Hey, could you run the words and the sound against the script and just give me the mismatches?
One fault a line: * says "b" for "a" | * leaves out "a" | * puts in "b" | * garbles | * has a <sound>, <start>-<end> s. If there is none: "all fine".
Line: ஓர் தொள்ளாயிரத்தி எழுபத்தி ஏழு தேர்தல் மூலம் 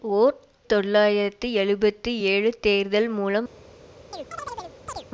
* has a chirp, 4.1-5.1 s